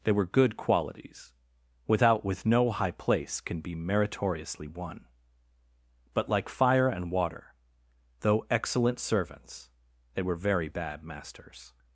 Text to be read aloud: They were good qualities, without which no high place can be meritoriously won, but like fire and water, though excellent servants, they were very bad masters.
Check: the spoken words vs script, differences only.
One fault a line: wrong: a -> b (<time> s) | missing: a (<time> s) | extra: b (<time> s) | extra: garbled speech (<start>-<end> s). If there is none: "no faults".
wrong: which -> with (2.2 s)